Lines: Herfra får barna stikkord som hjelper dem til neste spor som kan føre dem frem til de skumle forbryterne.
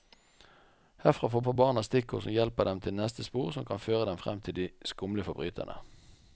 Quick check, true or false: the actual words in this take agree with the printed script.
false